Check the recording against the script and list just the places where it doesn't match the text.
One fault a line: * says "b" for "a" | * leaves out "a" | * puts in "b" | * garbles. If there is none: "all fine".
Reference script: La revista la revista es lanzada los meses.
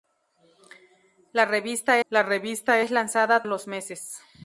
all fine